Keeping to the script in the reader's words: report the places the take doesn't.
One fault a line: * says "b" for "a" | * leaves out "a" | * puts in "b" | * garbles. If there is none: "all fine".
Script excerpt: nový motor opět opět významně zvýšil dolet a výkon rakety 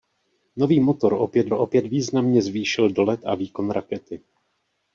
all fine